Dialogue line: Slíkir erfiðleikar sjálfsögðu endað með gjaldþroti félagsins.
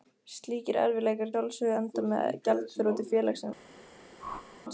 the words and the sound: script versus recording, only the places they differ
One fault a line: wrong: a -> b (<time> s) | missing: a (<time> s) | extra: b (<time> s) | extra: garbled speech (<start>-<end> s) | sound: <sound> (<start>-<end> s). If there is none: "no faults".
sound: whoosh (4.2-4.6 s)